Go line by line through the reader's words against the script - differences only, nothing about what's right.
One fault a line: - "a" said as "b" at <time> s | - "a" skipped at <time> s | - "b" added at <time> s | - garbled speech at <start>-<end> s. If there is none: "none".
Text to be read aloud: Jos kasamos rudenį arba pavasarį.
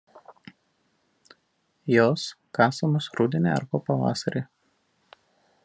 none